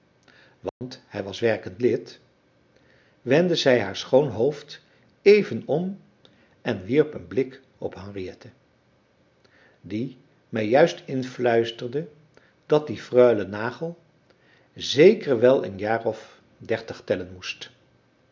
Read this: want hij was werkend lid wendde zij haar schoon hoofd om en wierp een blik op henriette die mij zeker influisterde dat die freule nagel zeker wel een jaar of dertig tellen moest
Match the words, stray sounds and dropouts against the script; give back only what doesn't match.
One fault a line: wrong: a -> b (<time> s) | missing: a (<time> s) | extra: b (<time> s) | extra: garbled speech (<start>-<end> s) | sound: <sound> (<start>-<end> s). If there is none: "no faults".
sound: dropout (0.7-0.8 s)
extra: even (5.2 s)
wrong: zeker -> juist (10.7 s)